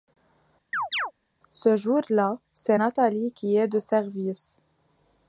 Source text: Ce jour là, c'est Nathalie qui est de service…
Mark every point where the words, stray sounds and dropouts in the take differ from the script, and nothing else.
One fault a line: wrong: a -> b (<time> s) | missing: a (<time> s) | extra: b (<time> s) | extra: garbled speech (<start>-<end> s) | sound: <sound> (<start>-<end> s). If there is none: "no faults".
sound: chirp (0.7-1.1 s)